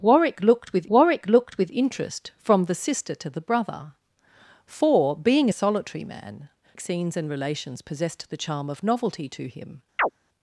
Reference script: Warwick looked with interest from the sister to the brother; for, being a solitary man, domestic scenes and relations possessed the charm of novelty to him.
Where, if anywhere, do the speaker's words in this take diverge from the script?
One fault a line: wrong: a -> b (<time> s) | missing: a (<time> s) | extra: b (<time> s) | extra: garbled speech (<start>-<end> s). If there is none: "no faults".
extra: warwick looked with (0.9 s)
missing: domestic (6.5 s)